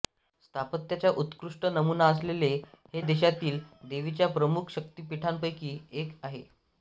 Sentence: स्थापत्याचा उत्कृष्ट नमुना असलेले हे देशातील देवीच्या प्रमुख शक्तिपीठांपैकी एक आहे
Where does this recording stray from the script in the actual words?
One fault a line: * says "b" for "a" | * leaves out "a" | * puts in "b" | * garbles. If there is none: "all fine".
all fine